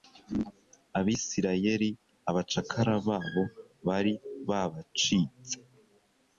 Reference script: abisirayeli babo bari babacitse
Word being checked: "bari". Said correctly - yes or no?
yes